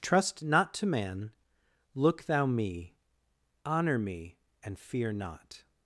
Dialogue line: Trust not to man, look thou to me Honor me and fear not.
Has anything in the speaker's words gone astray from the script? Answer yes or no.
yes